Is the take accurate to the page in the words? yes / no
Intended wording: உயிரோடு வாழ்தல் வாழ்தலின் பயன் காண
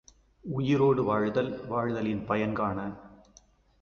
yes